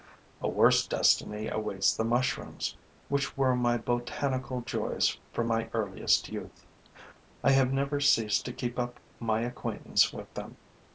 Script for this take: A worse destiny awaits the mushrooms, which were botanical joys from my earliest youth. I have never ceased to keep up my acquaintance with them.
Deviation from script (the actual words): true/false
true